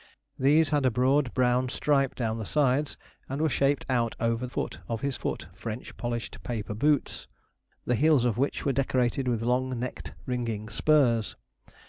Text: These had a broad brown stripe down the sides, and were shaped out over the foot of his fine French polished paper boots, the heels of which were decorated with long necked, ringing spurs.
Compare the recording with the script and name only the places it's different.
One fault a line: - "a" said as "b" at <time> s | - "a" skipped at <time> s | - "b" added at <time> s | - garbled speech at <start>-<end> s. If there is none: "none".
- "the" skipped at 4.5 s
- "fine" said as "foot" at 5.1 s